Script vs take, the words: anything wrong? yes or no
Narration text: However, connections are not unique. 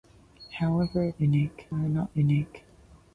yes